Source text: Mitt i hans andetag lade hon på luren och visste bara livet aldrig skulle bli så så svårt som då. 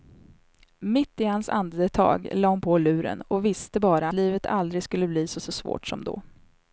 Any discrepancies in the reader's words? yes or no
no